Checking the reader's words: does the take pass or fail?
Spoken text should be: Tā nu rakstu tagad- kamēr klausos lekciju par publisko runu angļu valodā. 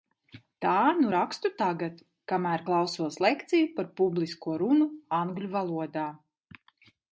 pass